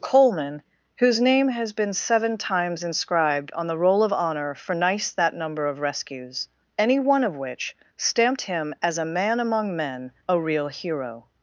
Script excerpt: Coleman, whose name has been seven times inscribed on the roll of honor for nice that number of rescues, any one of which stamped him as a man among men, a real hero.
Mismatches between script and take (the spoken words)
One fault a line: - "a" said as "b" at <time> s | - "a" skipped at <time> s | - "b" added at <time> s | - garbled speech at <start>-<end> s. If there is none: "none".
none